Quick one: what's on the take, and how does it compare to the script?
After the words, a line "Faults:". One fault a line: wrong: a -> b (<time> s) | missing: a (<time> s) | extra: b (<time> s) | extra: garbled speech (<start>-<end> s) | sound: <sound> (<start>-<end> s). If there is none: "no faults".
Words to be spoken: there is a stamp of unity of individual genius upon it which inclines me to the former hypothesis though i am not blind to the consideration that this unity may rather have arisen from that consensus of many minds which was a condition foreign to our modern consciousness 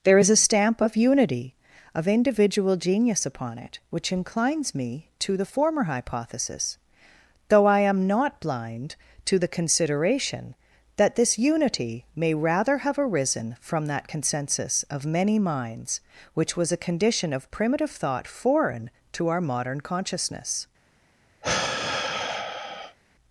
there is a stamp of unity of individual genius upon it which inclines me to the former hypothesis though i am not blind to the consideration that this unity may rather have arisen from that consensus of many minds which was a condition of primitive thought foreign to our modern consciousness
Faults:
extra: of primitive thought (17.3 s)
sound: sigh (21.4-23.0 s)